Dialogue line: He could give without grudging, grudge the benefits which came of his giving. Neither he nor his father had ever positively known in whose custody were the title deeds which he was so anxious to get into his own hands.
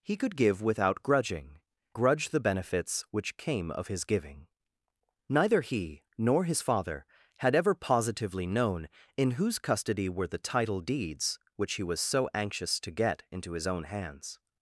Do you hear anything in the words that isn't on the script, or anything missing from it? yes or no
no